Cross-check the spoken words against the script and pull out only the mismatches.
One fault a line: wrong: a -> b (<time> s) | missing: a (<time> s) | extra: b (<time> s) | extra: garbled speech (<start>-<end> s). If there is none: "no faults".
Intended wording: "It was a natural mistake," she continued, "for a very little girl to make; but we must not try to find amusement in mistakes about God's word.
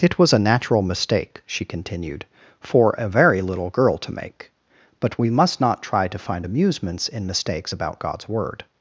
wrong: amusement -> amusements (6.4 s)